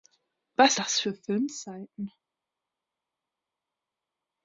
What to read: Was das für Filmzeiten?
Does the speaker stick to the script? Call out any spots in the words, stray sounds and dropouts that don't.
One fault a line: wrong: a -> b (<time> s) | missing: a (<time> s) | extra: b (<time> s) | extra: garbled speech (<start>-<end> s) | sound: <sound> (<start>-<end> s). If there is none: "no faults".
no faults